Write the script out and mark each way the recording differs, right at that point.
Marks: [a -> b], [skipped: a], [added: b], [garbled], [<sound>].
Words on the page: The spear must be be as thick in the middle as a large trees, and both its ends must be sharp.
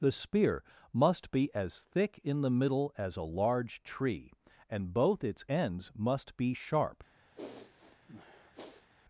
The spear must be [skipped: be] as thick in the middle as a large [trees, -> tree] and both its ends must be sharp. [sniff]